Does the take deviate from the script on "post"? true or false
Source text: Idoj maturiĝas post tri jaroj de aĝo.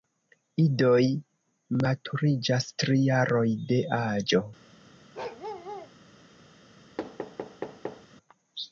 true